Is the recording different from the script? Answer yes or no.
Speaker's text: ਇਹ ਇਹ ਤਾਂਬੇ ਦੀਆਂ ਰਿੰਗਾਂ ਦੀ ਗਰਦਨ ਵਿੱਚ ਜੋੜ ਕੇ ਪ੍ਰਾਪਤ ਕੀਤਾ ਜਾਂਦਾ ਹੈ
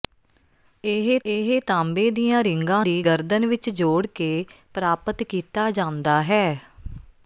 no